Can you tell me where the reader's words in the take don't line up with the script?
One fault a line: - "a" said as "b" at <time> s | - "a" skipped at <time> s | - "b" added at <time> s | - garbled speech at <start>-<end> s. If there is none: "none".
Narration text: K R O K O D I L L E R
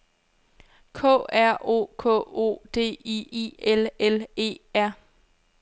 - "I" added at 3.3 s